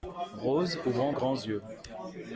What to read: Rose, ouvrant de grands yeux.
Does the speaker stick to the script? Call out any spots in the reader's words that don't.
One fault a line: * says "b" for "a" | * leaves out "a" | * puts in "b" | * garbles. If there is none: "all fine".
* leaves out "de"